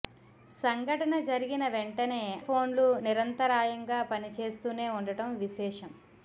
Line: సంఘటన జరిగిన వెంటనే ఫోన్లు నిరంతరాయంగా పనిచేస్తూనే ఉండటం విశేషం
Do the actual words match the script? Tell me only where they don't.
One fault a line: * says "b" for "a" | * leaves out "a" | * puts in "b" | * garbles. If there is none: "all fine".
all fine